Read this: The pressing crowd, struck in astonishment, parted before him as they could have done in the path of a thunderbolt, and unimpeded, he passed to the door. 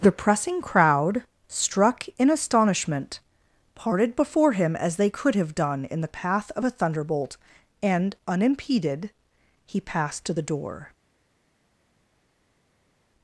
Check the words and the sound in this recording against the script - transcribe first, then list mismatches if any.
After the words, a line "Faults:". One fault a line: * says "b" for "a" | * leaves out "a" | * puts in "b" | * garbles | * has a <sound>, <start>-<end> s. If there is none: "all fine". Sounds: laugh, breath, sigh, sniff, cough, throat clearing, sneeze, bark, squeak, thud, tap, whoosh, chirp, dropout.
The pressing crowd, struck in astonishment, parted before him as they could have done in the path of a thunderbolt, and unimpeded, he passed to the door.
Faults:
all fine